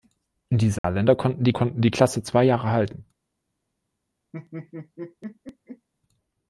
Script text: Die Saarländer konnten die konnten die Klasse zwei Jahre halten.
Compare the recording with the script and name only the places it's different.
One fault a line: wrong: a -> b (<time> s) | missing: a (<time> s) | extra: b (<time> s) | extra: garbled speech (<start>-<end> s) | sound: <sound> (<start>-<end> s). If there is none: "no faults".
sound: dropout (0.8-0.8 s)
sound: laugh (4.3-5.9 s)